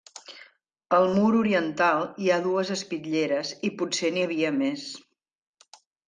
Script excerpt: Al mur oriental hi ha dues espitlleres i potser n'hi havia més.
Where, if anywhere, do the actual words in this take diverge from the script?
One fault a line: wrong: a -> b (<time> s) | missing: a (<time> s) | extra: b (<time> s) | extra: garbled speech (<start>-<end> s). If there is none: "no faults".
no faults